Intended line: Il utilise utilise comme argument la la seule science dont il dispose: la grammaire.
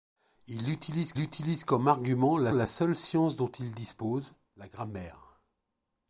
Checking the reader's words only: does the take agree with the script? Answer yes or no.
yes